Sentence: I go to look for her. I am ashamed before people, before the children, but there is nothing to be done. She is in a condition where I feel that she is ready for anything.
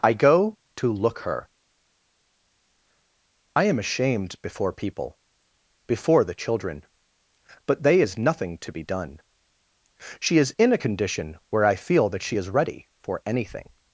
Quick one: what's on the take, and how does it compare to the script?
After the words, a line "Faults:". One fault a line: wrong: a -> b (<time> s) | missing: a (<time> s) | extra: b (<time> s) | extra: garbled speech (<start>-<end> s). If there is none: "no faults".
I go to look her. I am ashamed before people, before the children, but they is nothing to be done. She is in a condition where I feel that she is ready for anything.
Faults:
missing: for (1.2 s)
wrong: there -> they (7.8 s)